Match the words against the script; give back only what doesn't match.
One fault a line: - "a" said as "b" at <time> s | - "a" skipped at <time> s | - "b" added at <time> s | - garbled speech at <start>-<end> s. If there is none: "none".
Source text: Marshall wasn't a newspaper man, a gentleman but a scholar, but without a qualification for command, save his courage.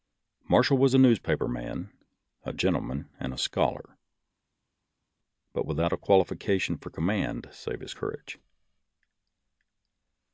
- "wasn't" said as "was" at 0.8 s
- "but" said as "and" at 3.2 s